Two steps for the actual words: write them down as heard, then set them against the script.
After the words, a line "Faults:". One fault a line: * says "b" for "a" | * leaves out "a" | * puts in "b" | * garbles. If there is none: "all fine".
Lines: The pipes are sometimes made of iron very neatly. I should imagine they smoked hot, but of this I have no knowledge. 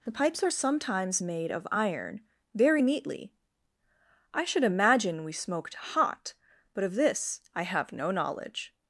The pipes are sometimes made of iron very neatly. I should imagine we smoked hot, but of this I have no knowledge.
Faults:
* says "we" for "they"